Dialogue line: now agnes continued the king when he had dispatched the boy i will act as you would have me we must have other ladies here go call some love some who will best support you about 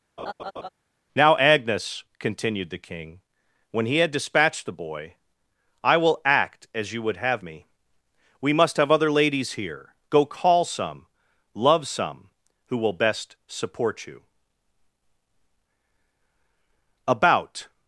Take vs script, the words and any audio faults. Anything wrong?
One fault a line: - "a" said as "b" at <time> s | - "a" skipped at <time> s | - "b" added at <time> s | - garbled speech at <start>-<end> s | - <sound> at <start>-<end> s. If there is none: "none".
- laugh at 0.2-0.7 s